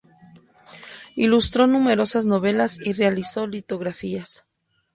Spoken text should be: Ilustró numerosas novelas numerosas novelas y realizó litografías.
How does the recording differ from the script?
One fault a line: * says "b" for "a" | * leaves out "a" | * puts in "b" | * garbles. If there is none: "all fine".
* leaves out "numerosas novelas"